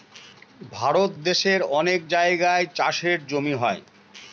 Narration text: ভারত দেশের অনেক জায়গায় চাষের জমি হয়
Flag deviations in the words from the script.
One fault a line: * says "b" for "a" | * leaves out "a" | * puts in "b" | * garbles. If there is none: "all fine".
all fine